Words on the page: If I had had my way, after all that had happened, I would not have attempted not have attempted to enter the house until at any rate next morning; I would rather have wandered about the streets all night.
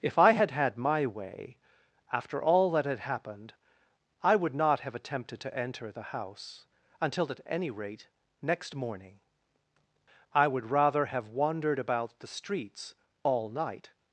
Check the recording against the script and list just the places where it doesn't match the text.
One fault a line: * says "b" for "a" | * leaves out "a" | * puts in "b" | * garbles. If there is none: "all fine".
* leaves out "not have attempted"